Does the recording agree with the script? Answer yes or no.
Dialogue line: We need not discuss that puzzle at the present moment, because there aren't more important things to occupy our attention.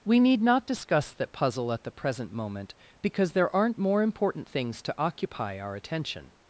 yes